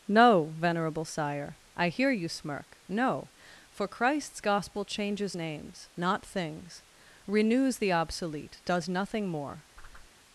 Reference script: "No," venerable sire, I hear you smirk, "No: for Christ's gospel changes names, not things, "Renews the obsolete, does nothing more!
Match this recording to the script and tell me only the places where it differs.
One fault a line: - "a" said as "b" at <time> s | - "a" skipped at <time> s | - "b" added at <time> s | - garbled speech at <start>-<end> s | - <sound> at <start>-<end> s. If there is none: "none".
- whoosh at 9.8-10.1 s